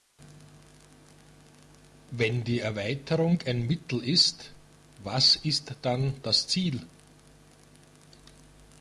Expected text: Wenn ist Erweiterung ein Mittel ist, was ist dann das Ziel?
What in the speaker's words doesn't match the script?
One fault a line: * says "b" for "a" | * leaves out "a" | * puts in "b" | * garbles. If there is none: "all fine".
* says "die" for "ist"